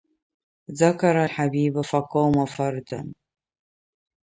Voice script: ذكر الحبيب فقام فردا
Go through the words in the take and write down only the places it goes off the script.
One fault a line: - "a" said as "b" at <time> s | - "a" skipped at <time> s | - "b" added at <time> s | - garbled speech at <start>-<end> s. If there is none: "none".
none